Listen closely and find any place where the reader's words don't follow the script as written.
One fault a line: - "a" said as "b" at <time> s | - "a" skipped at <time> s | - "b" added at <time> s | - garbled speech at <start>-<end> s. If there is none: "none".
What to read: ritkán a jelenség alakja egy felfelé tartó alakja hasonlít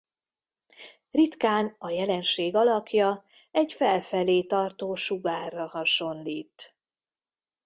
- "alakja" said as "sugárra" at 5.0 s